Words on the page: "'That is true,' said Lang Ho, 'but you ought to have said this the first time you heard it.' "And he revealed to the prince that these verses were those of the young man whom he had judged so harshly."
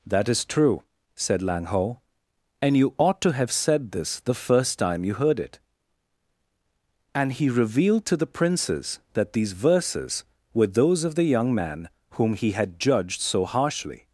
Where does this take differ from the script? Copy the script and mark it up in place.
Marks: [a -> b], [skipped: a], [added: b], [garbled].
"'That is true,' said Lang Ho, ['but -> and] you ought to have said this the first time you heard it.' "And he revealed to the [prince -> princes] that these verses were those of the young man whom he had judged so harshly."